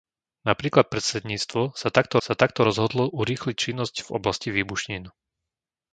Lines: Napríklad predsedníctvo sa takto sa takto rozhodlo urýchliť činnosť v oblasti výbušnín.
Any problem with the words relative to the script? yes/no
no